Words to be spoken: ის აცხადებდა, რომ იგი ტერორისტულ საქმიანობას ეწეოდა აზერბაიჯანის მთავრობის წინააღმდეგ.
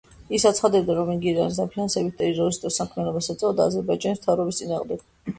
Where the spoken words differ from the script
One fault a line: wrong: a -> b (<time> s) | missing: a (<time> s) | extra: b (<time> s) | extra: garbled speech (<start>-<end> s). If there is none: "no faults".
extra: ირანის დაფინანსებით (1.3 s)